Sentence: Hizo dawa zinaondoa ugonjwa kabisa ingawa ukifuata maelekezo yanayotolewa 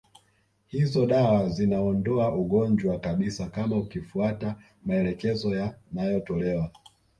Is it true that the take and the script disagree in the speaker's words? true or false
true